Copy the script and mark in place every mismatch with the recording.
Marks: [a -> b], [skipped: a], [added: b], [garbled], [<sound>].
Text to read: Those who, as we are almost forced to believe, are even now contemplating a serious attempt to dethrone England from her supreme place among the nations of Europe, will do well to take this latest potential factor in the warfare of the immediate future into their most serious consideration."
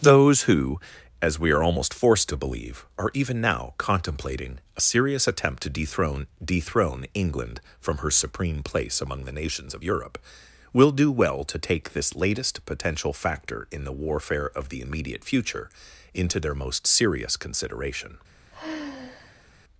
Those who, as we are almost forced to believe, are even now contemplating a serious attempt to dethrone [added: dethrone] England from her supreme place among the nations of Europe, will do well to take this latest potential factor in the warfare of the immediate future into their most serious consideration." [sigh]